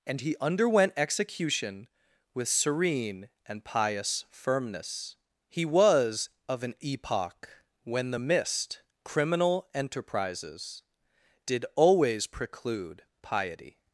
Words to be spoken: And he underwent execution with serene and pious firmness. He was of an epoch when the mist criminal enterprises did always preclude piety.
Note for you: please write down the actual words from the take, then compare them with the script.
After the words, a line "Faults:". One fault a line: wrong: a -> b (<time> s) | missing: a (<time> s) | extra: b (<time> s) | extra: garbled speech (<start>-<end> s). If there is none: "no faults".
And he underwent execution with serene and pious firmness. He was of an epoch when the mist criminal enterprises did always preclude piety.
Faults:
no faults